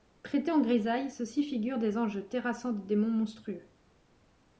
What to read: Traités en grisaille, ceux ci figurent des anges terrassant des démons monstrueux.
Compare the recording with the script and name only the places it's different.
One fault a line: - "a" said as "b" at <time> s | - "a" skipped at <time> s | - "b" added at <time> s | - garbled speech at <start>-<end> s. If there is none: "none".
none